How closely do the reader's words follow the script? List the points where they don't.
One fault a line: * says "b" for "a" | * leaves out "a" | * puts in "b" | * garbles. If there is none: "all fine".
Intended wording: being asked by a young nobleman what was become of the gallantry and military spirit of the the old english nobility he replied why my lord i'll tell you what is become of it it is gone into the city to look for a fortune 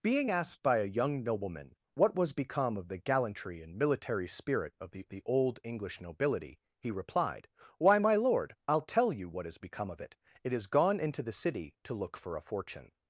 all fine